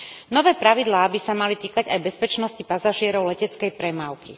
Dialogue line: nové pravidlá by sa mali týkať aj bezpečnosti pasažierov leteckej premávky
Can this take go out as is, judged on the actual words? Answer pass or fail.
pass